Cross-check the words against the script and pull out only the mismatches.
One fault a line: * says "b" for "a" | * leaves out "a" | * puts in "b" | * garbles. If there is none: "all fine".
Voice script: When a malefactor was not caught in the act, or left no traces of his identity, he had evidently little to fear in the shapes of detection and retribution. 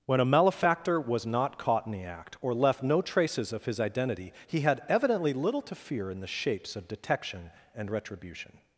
all fine